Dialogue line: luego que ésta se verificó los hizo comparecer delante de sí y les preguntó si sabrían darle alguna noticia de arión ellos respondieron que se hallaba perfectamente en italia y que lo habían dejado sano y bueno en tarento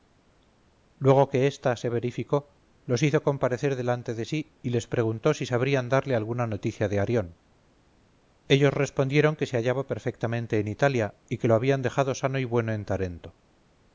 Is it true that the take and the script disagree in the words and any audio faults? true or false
false